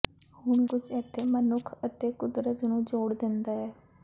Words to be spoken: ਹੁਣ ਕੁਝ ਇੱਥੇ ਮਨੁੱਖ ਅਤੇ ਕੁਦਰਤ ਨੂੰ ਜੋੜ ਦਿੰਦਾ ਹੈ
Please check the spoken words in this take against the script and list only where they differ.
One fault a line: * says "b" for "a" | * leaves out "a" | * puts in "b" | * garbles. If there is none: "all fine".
all fine